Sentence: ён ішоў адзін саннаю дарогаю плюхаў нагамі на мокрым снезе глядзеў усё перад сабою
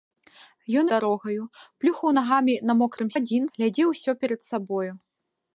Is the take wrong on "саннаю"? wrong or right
wrong